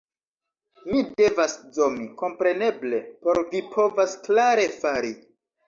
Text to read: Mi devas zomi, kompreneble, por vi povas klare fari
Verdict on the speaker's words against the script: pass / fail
pass